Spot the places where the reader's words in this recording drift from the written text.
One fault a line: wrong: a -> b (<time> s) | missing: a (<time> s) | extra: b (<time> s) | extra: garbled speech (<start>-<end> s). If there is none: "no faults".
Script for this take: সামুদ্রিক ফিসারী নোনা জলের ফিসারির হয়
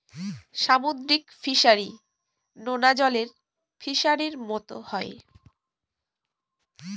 extra: মতো (4.5 s)